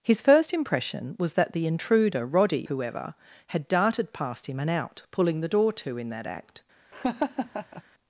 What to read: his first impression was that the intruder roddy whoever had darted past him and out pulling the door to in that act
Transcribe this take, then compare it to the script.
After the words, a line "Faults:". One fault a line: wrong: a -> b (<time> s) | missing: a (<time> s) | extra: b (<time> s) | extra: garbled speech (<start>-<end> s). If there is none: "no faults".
his first impression was that the intruder roddy whoever had darted past him and out pulling the door to in that act
Faults:
no faults